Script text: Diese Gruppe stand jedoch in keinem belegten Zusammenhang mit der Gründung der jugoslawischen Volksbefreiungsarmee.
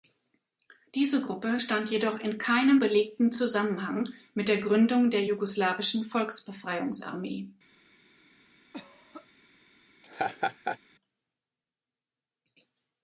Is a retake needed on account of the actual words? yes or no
no